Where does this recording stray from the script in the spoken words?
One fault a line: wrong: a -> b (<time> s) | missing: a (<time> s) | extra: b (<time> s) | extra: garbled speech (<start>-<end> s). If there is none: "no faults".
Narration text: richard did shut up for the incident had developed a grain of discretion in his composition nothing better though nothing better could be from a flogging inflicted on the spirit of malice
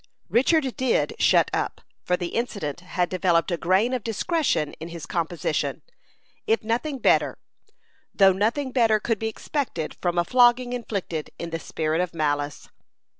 extra: if (6.5 s)
extra: expected (9.3 s)
wrong: on -> in (11.4 s)